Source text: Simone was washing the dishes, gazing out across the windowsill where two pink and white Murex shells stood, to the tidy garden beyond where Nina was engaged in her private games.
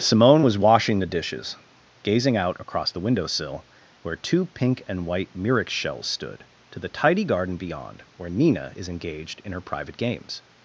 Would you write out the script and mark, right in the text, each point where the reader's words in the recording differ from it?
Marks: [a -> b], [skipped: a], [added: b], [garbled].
Simone was washing the dishes, gazing out across the windowsill where two pink and white Murex shells stood, to the tidy garden beyond where Nina [was -> is] engaged in her private games.